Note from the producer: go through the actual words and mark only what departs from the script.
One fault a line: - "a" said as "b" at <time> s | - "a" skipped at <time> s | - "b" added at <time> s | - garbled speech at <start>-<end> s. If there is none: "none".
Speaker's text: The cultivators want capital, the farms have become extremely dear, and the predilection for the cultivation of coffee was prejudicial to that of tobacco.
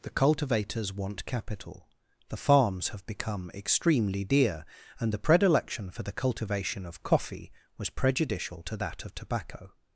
none